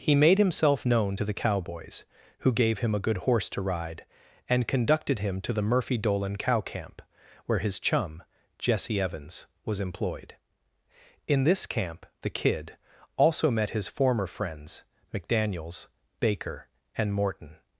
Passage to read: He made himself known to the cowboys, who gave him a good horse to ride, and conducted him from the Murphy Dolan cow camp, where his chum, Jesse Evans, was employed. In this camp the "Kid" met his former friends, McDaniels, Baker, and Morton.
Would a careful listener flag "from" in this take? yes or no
yes